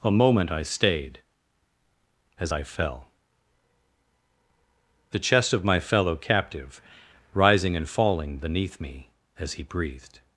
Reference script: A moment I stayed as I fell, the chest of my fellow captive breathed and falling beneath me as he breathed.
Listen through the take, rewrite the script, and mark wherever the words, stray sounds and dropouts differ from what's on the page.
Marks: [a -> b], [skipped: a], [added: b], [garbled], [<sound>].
A moment I stayed as I fell, the chest of my fellow captive [breathed -> rising] and falling beneath me as he breathed.